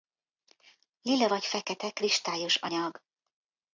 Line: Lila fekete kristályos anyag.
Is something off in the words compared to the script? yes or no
yes